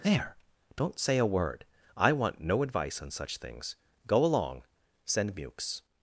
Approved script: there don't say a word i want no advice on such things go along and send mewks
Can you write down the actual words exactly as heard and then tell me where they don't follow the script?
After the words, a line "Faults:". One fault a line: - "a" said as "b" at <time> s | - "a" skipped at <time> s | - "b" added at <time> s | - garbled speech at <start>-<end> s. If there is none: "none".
there don't say a word i want no advice on such things go along send mewks
Faults:
- "and" skipped at 4.6 s